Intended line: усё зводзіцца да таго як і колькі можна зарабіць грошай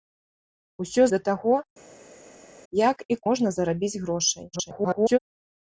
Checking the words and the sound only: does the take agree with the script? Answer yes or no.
no